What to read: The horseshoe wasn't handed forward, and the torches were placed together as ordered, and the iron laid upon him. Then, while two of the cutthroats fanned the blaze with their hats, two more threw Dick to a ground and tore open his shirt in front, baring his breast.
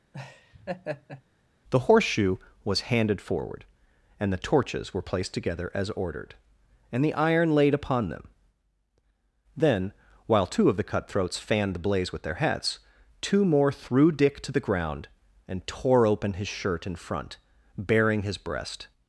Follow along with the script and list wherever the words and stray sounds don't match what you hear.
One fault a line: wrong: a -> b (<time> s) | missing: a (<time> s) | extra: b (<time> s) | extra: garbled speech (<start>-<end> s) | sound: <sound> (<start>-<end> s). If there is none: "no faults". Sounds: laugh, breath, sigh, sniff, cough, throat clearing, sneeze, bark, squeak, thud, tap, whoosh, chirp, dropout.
sound: laugh (0.1-1.2 s)
wrong: wasn't -> was (2.6 s)
wrong: him -> them (8.1 s)
wrong: a -> the (14.5 s)